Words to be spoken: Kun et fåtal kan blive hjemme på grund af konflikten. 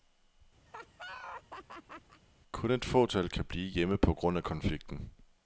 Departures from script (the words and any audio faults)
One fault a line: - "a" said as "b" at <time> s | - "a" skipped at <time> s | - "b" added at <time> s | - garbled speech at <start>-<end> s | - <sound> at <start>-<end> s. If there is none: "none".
- laugh at 0.7-2.2 s